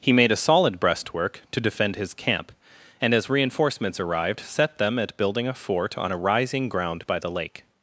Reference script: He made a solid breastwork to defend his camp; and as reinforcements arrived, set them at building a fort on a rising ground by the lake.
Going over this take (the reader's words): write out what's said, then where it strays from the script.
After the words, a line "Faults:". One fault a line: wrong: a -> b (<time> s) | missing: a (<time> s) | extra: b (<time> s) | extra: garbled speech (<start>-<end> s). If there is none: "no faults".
He made a solid breastwork to defend his camp; and as reinforcements arrived, set them at building a fort on a rising ground by the lake.
Faults:
no faults